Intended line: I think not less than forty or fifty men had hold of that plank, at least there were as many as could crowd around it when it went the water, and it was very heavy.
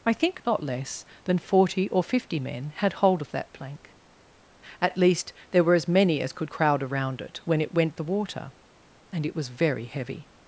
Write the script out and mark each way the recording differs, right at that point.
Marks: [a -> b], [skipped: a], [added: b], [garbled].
I think not less than forty or fifty men had hold of that plank, at least there were as many as could crowd around it when it went the water, and it was very heavy.